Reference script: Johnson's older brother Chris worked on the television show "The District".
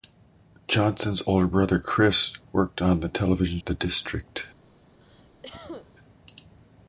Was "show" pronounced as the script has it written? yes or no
no